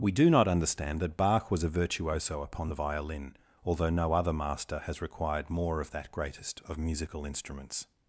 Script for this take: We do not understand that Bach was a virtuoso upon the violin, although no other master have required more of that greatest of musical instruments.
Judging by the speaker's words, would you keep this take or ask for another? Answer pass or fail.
fail